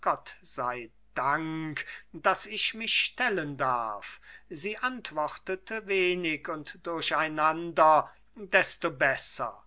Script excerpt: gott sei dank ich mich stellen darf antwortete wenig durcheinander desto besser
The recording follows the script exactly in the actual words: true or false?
false